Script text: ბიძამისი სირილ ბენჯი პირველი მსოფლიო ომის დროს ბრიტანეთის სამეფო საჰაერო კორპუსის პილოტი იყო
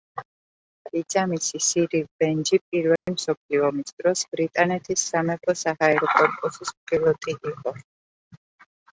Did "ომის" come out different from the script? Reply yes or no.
no